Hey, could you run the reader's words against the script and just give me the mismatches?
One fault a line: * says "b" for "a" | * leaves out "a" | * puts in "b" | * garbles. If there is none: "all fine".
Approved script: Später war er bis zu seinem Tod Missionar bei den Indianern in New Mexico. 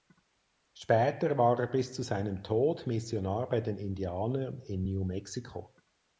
all fine